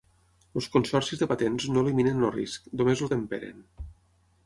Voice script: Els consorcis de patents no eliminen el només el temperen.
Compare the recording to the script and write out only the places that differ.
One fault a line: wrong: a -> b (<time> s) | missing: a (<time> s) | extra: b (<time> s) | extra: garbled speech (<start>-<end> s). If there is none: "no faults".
extra: risc (2.3 s)